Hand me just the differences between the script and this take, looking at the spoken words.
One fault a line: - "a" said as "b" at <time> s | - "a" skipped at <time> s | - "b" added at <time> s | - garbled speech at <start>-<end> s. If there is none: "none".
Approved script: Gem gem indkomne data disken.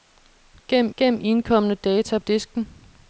none